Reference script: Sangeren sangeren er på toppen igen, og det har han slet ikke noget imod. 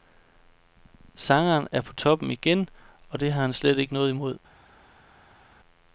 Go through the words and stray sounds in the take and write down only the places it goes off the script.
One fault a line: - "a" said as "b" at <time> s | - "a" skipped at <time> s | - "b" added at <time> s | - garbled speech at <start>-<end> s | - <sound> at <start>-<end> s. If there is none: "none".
- "sangeren" skipped at 1.7 s